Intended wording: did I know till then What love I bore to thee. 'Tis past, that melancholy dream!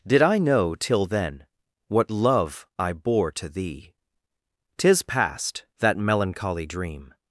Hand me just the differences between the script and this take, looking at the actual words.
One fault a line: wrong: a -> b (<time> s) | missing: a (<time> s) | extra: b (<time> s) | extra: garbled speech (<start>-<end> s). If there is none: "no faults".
no faults